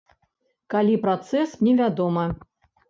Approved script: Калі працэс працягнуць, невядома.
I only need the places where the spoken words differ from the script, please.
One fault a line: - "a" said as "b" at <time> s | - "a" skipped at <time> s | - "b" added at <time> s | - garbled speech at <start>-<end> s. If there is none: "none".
- "працягнуць" skipped at 1.6 s